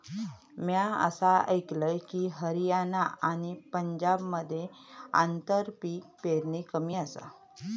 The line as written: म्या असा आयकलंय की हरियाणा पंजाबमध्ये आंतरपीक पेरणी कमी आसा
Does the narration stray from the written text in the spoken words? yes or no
yes